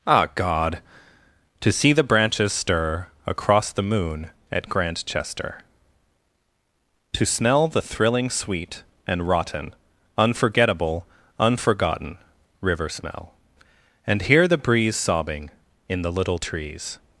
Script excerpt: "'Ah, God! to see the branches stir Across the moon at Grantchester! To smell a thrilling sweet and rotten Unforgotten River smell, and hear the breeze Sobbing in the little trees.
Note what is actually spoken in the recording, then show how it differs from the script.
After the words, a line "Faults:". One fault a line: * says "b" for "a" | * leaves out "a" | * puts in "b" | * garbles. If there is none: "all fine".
"'Ah, God! to see the branches stir Across the moon at Grantchester! To smell the thrilling sweet and rotten Unforgettable, unforgotten River smell, and hear the breeze Sobbing in the little trees.
Faults:
* says "the" for "a"
* puts in "Unforgettable"